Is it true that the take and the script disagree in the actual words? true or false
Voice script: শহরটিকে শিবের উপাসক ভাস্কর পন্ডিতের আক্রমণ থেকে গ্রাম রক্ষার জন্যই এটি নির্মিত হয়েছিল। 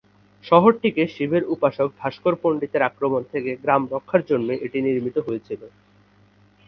false